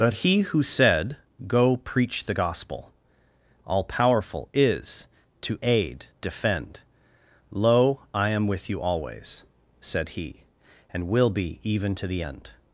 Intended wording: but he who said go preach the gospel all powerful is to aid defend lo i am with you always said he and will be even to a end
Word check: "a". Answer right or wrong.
wrong